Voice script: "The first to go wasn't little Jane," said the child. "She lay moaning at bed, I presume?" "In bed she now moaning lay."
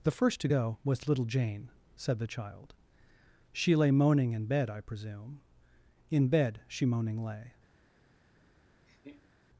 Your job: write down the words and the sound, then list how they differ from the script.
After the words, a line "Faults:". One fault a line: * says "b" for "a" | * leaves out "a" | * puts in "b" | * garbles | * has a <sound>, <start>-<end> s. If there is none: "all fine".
"The first to go was little Jane," said the child. "She lay moaning in bed, I presume?" "In bed she moaning lay."
Faults:
* says "was" for "wasn't"
* says "in" for "at"
* leaves out "now"
* has a laugh, 8.9-9.3 s